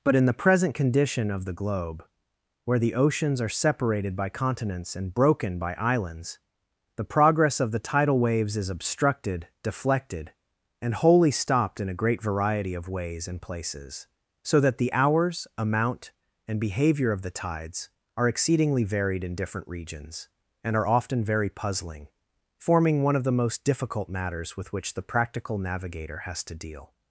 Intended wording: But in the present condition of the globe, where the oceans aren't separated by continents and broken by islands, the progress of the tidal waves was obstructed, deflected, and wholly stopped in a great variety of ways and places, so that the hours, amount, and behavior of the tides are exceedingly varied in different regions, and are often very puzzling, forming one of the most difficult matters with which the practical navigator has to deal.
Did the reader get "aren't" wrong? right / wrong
wrong